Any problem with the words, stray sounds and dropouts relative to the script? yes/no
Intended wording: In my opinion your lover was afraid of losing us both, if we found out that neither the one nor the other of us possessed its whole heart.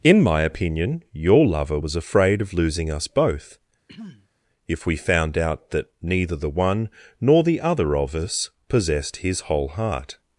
yes